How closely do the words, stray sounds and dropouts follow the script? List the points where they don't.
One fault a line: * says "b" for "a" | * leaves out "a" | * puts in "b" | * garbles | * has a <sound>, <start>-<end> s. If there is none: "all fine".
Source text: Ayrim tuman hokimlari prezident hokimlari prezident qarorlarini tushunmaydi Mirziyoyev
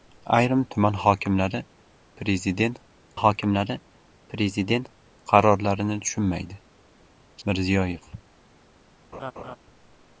* has a laugh, 9.1-9.6 s